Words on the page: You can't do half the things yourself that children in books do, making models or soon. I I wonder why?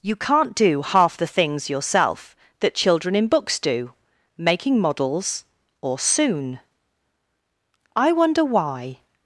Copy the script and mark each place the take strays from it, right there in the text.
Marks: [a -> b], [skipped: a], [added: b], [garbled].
You can't do half the things yourself that children in books do, making models or soon. I [skipped: I] wonder why?